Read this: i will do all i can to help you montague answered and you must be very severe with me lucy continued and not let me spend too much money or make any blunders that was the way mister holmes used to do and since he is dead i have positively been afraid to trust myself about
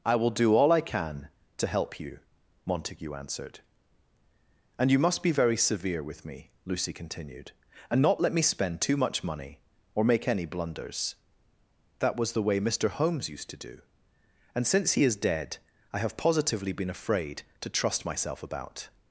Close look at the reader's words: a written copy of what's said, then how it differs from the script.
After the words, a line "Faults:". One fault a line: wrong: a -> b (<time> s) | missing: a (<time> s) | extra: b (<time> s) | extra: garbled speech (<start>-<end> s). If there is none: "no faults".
i will do all i can to help you montague answered and you must be very severe with me lucy continued and not let me spend too much money or make any blunders that was the way mister holmes used to do and since he is dead i have positively been afraid to trust myself about
Faults:
no faults